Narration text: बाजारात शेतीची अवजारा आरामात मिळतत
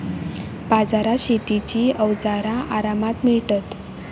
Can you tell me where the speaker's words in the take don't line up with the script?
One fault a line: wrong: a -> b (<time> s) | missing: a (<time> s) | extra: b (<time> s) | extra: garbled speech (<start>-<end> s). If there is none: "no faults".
no faults